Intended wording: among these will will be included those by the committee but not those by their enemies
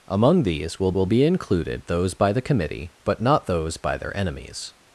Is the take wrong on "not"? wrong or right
right